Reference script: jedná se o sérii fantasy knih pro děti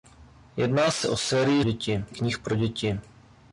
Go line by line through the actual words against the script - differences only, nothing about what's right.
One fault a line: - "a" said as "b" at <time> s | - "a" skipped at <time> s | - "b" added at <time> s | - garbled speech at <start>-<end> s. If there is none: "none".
- "fantasy" said as "děti" at 1.6 s